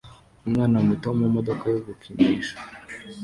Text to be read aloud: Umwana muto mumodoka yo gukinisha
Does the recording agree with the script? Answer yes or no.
yes